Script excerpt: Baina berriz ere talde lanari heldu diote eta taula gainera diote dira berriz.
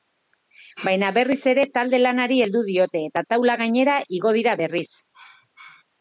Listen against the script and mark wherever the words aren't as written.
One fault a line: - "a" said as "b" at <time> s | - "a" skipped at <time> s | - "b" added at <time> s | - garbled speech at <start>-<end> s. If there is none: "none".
- "diote" said as "igo" at 4.2 s